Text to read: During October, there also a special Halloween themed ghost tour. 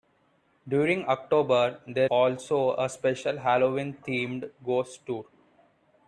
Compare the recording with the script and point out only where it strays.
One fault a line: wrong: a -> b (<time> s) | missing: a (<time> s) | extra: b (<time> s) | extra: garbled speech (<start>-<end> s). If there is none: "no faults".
no faults